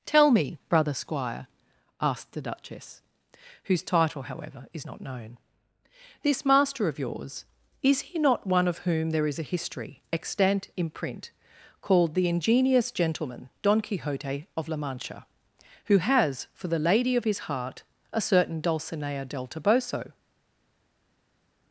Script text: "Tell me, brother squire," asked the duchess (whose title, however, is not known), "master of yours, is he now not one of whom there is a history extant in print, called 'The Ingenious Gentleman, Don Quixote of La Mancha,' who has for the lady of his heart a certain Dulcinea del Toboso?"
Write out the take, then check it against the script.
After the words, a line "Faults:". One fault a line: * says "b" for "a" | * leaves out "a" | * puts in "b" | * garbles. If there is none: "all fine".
"Tell me, brother squire," asked the duchess (whose title, however, is not known), "this master of yours, is he not one of whom there is a history extant in print, called 'The Ingenious Gentleman, Don Quixote of La Mancha,' who has for the lady of his heart a certain Dulcinea del Toboso?"
Faults:
* puts in "this"
* leaves out "now"